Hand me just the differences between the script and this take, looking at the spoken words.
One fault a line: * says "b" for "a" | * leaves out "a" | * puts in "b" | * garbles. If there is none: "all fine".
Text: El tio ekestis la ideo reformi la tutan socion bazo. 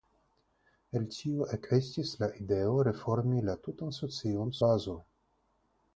all fine